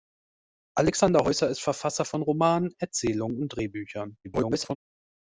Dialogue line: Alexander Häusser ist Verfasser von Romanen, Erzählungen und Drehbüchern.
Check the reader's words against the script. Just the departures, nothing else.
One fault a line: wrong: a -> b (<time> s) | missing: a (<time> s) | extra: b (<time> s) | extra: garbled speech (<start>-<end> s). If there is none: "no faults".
extra: garbled speech (4.2-4.8 s)